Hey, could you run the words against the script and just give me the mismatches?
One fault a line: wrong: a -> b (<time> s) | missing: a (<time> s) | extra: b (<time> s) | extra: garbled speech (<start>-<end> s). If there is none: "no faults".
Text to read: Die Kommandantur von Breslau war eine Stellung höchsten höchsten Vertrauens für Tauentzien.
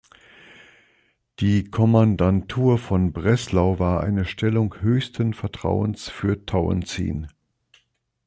missing: höchsten (5.3 s)